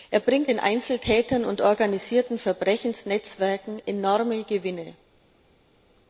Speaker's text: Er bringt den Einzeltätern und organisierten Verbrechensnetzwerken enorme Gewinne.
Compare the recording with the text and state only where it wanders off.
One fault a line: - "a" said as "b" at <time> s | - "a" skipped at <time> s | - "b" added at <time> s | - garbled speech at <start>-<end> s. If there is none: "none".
none